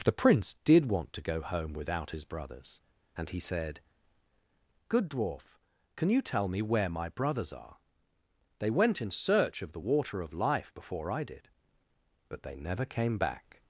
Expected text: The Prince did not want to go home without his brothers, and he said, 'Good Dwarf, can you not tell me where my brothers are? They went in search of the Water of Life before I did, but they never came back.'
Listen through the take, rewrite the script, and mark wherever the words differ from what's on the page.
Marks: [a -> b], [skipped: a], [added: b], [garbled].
The Prince did [skipped: not] want to go home without his brothers, and he said, 'Good Dwarf, can you [skipped: not] tell me where my brothers are? They went in search of the Water of Life before I did, but they never came back.'